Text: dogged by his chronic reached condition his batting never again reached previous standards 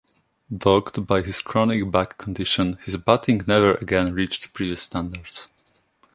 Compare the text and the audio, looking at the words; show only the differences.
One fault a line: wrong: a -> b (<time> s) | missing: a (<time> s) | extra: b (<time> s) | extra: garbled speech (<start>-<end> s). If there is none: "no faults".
wrong: reached -> back (1.9 s)